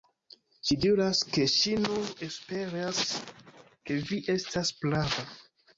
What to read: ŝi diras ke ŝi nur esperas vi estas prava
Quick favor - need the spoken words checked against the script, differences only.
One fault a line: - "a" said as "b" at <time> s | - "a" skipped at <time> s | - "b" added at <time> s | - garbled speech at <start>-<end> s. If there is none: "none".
- "ke" added at 3.9 s